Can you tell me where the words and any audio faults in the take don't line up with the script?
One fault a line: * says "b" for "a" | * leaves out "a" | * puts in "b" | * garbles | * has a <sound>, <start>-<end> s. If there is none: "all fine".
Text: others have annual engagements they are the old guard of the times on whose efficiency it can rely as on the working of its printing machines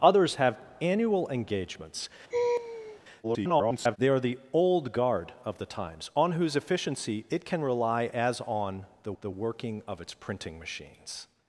* has a laugh, 2.3-3.0 s
* garbles
* puts in "the"